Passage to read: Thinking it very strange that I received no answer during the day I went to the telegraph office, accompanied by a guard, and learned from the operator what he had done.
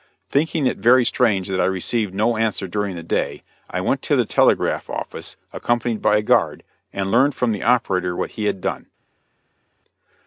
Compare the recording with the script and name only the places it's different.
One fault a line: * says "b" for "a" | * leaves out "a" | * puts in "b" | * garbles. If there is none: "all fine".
all fine